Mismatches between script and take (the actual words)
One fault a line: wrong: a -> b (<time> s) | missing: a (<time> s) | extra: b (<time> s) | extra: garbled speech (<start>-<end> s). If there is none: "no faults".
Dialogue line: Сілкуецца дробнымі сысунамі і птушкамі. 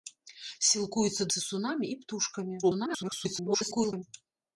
missing: дробнымі (1.3 s)
extra: garbled speech (2.6-4.0 s)